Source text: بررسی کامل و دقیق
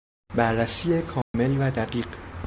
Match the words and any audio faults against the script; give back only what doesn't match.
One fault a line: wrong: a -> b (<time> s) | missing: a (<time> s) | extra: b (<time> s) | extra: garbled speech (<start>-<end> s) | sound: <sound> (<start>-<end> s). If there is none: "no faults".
sound: dropout (1.2-1.3 s)